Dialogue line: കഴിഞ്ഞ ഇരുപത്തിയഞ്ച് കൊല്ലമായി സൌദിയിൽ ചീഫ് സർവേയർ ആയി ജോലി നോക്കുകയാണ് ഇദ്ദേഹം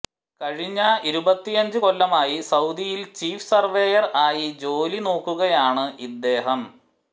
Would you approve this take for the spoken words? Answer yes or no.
yes